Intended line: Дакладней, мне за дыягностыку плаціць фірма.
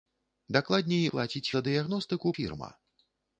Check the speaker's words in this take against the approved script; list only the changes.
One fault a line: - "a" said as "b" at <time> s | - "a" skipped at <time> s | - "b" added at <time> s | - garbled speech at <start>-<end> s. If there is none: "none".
- "мне" said as "плаціць" at 1.1 s
- "плаціць" skipped at 2.3 s